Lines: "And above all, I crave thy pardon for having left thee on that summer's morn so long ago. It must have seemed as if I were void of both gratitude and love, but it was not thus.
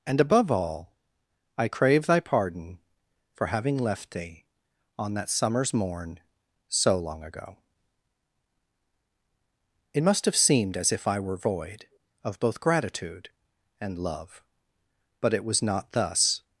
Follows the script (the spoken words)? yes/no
yes